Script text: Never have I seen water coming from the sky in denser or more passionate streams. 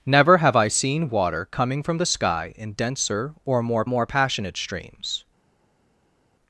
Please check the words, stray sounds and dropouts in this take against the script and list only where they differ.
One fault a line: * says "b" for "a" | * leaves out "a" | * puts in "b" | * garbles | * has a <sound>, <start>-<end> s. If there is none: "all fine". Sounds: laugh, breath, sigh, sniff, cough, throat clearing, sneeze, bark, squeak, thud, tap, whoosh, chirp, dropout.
* puts in "more"